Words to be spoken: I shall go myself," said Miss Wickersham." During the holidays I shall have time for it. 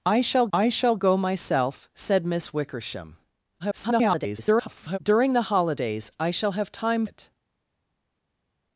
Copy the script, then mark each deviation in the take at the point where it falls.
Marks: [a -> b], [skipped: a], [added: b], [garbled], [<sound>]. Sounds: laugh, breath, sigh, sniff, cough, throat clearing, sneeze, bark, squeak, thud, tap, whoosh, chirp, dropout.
I shall [added: I shall] go myself," said Miss Wickersham." [garbled] During the holidays I shall have time [skipped: for] it.